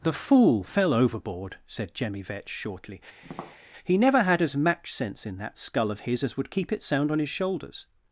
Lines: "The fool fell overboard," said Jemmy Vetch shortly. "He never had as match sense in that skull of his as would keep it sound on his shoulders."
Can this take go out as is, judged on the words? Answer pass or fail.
pass